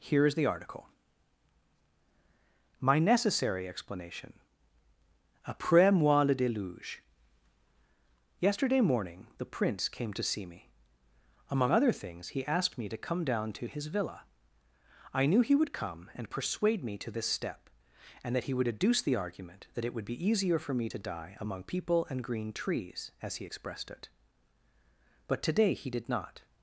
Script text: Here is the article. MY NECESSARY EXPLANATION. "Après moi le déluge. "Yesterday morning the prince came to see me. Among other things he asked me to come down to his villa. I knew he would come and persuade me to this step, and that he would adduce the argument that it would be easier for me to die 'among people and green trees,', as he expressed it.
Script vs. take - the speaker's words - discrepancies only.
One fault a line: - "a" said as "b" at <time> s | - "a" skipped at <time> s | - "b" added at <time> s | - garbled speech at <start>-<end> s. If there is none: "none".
- "But today he did not" added at 25.3 s